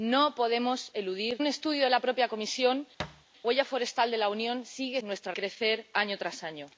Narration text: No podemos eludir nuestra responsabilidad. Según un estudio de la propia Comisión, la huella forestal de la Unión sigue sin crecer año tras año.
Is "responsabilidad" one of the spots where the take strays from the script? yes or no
yes